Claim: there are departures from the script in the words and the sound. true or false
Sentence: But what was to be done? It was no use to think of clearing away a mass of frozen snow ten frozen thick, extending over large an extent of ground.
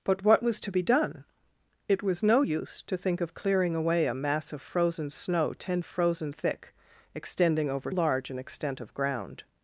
false